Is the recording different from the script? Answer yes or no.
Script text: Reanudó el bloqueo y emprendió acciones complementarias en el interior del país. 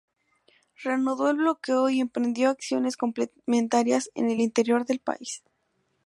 no